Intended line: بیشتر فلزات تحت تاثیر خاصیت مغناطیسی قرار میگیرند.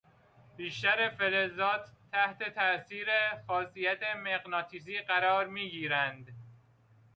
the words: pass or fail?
pass